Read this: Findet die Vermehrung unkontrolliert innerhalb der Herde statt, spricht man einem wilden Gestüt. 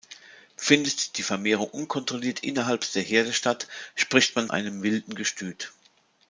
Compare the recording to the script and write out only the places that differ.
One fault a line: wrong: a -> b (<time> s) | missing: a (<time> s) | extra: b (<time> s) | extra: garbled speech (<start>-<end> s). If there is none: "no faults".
no faults